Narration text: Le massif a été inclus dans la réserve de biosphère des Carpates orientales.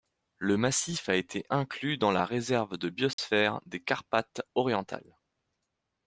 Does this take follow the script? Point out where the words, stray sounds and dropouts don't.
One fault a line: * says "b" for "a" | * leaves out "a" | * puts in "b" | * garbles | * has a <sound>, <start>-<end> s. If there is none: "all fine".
* has a dropout, 3.1-3.2 s